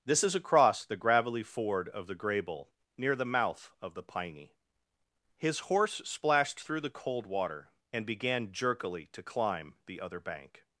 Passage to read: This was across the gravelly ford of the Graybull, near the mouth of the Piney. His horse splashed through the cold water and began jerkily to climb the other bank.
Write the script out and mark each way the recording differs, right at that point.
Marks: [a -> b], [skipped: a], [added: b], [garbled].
This [was -> is] across the gravelly ford of the Graybull, near the mouth of the Piney. His horse splashed through the cold water and began jerkily to climb the other bank.